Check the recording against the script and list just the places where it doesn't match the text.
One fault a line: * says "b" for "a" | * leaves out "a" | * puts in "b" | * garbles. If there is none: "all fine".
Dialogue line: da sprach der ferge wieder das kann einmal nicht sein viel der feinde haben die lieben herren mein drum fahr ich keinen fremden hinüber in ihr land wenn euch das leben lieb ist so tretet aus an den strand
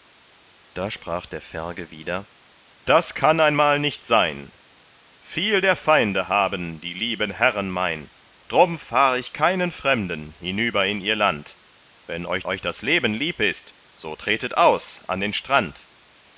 * puts in "euch"